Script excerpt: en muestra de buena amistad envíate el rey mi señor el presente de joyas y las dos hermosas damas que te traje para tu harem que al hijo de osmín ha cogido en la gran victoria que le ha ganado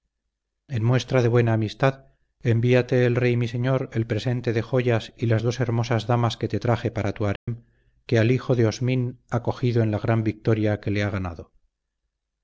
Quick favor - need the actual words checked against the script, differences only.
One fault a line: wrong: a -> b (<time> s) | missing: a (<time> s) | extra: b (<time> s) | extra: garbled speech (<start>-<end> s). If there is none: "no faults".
no faults